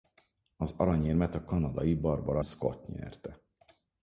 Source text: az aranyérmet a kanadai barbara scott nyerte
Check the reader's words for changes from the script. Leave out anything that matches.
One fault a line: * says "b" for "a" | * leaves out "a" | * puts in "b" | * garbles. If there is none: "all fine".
all fine